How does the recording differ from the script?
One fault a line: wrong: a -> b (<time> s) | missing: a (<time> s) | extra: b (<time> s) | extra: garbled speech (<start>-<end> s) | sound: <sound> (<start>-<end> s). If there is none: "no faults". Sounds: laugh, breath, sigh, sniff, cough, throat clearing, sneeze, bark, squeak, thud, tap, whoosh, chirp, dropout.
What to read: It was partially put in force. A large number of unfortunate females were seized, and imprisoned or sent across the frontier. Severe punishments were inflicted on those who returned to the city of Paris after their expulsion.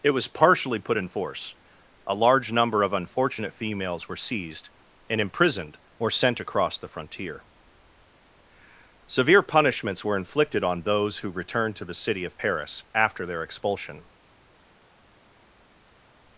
no faults